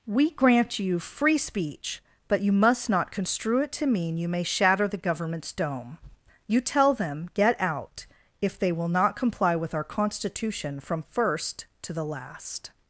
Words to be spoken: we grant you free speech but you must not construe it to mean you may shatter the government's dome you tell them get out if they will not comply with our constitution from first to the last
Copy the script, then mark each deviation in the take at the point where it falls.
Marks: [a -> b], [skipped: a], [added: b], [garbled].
we grant you free speech but you must not construe it to mean you may shatter the government's dome you tell them get out if they will not comply with our constitution from first to the last